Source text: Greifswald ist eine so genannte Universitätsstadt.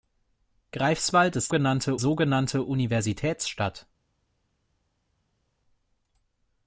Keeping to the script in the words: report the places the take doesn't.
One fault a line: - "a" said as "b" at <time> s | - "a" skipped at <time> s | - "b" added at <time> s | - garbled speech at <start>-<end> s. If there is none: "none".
- "eine" said as "genannte" at 1.5 s